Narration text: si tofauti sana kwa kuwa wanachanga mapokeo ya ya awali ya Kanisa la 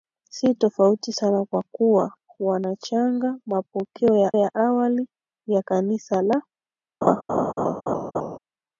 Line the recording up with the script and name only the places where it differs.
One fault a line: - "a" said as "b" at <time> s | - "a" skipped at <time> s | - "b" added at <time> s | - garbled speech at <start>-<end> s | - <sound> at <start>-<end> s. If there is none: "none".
- laugh at 7.0-8.4 s